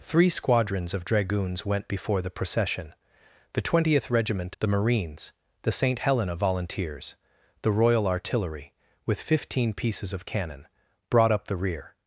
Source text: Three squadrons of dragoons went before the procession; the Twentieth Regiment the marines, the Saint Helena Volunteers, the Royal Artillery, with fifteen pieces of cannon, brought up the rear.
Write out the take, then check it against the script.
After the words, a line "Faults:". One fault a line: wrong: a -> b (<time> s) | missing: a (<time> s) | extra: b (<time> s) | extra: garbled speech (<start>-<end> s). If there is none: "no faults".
Three squadrons of dragoons went before the procession; the Twentieth Regiment the marines, the Saint Helena Volunteers, the Royal Artillery, with fifteen pieces of cannon, brought up the rear.
Faults:
no faults